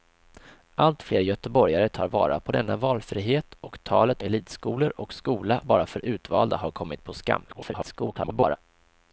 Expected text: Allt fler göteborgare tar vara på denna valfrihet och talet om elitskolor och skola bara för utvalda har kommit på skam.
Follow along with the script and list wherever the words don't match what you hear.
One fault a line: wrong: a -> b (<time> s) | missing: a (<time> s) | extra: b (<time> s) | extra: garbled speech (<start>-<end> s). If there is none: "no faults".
missing: om (4.2 s)
extra: garbled speech (7.5-8.6 s)